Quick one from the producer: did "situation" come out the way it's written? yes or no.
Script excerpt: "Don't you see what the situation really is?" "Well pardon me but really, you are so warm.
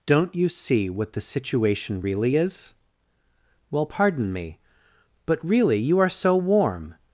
yes